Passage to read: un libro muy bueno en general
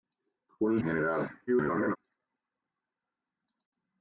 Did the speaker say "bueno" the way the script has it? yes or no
no